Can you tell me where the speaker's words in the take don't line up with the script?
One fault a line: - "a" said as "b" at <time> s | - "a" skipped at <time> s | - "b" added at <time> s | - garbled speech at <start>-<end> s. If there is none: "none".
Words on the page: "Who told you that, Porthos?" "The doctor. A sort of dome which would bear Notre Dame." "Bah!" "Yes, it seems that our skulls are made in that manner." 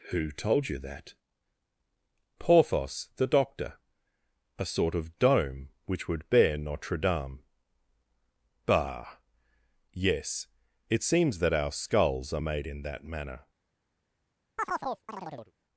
none